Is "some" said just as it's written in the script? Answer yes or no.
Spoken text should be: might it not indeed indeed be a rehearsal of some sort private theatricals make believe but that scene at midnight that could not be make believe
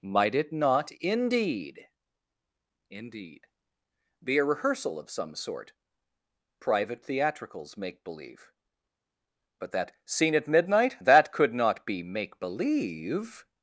yes